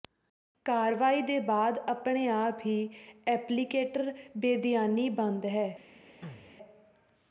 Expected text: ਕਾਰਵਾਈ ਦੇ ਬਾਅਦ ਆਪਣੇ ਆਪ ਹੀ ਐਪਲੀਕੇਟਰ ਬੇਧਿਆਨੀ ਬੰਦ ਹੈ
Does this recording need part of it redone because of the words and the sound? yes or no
yes